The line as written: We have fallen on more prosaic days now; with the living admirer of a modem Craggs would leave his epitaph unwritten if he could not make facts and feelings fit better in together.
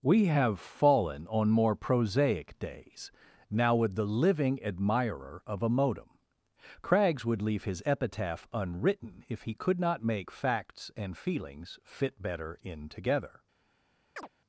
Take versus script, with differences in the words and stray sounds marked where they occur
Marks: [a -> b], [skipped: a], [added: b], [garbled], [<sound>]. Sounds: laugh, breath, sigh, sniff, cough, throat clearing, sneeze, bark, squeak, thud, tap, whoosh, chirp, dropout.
We have fallen on more prosaic days now; with the living admirer of a modem Craggs would leave his epitaph unwritten if he could not make facts and feelings fit better in together. [chirp]